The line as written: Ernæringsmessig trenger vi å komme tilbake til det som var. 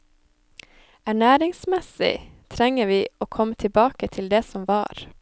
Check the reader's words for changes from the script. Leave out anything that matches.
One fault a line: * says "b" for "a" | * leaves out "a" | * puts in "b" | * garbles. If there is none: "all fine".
all fine